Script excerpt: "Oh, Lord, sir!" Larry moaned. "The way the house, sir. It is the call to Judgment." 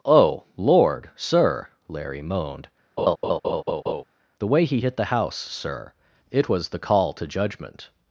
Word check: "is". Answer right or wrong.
wrong